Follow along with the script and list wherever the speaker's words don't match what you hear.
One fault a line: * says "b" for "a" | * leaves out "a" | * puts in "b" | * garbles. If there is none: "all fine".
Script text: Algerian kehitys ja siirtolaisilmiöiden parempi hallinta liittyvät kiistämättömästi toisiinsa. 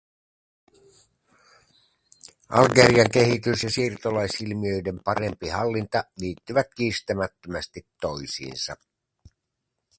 all fine